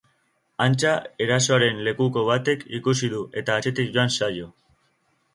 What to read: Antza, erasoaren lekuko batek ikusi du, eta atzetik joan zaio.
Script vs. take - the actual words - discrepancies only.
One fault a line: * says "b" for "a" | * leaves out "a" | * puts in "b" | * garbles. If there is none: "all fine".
all fine